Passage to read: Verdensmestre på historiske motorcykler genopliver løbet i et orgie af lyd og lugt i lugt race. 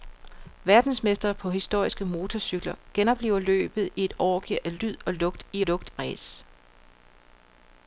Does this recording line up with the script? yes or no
yes